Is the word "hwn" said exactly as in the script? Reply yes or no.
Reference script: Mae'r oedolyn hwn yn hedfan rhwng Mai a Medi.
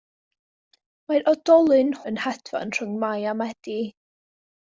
no